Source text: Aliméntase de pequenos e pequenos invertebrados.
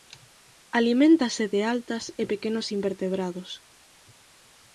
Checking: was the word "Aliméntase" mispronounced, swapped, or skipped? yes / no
no